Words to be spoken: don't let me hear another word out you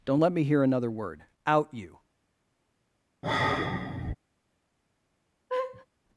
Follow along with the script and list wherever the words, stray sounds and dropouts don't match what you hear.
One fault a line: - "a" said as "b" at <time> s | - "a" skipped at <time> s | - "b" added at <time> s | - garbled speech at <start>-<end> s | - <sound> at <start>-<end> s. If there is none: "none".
- sigh at 3.2-4.1 s
- laugh at 5.5-5.9 s